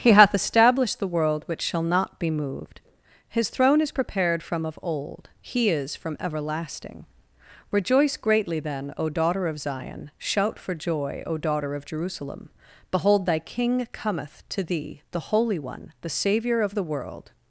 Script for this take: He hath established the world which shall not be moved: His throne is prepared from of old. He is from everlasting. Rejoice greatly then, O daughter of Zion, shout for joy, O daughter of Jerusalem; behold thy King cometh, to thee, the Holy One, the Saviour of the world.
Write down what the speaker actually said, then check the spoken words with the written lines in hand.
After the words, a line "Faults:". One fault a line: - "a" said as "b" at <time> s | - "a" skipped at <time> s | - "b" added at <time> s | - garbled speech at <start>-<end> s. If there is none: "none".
He hath established the world which shall not be moved: His throne is prepared from of old. He is from everlasting. Rejoice greatly then, O daughter of Zion, shout for joy, O daughter of Jerusalem; behold thy King cometh, to thee, the Holy One, the Saviour of the world.
Faults:
none